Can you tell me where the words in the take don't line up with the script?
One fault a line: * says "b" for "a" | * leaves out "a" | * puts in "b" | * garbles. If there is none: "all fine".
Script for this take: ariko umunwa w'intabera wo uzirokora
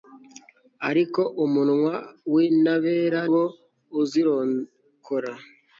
all fine